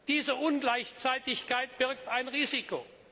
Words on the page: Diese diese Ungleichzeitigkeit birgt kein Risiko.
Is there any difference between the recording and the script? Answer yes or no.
yes